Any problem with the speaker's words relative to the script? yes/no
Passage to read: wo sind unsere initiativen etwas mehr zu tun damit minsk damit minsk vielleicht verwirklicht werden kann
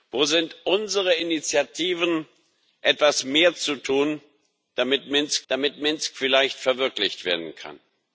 no